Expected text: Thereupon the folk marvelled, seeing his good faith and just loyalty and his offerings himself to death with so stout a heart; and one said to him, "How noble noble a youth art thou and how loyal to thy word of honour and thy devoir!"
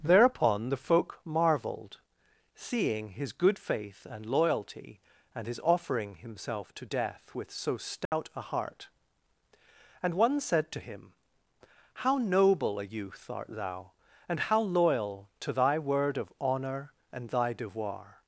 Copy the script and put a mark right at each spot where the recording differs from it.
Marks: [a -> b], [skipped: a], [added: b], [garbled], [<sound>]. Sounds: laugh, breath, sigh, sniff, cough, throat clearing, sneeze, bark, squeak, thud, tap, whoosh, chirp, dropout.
Thereupon the folk marvelled, seeing his good faith and [skipped: just] loyalty and his [offerings -> offering] himself to death with so stout [dropout] a heart; and one said to him, "How noble [skipped: noble] a youth art thou and how loyal to thy word of honour and thy devoir!"